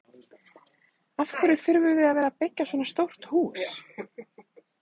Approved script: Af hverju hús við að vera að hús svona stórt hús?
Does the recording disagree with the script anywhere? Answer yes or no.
yes